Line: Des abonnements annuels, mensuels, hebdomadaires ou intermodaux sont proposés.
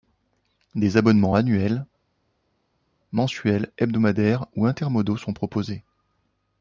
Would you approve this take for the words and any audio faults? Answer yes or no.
yes